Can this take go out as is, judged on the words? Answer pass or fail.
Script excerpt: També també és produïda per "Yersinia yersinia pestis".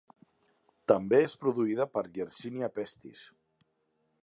fail